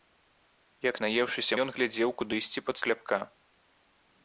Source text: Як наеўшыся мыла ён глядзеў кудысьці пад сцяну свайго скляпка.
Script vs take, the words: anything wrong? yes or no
yes